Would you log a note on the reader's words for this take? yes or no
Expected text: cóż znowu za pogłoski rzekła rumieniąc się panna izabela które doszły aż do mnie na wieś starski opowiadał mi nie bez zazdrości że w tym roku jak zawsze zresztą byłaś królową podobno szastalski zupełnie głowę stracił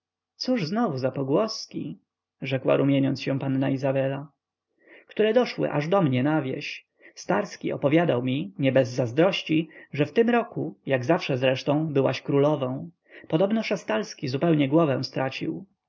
no